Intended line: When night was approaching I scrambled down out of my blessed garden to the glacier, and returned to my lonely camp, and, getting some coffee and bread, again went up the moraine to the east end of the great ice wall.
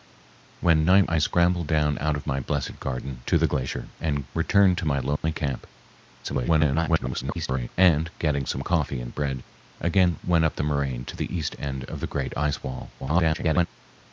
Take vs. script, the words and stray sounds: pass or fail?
fail